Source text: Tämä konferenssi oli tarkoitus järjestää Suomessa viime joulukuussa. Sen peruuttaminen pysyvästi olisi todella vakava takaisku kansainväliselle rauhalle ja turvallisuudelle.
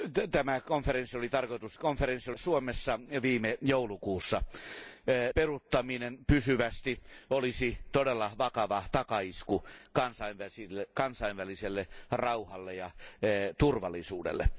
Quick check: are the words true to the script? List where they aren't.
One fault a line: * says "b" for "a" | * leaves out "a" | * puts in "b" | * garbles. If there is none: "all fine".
* says "konferenssi" for "järjestää"
* leaves out "Sen"